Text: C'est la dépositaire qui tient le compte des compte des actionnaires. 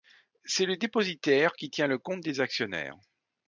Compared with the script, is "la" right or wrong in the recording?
wrong